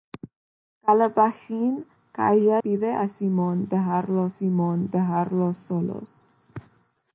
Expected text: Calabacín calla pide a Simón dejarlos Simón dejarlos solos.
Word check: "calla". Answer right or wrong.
right